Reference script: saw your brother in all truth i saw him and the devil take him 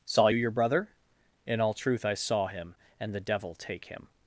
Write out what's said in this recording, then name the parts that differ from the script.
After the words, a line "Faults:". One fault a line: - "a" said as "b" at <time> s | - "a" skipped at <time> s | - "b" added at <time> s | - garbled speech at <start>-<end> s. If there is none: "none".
saw your brother in all truth i saw him and the devil take him
Faults:
none